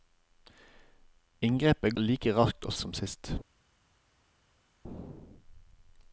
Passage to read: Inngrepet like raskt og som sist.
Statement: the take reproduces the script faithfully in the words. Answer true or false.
true